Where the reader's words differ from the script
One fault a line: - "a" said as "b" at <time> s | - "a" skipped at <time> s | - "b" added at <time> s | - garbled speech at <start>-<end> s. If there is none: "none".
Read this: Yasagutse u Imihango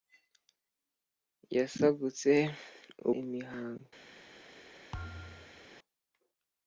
none